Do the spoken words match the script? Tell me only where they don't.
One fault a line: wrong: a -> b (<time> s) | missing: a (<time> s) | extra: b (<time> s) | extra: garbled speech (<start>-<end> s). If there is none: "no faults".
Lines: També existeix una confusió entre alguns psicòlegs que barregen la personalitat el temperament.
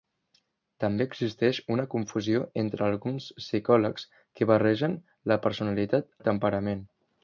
no faults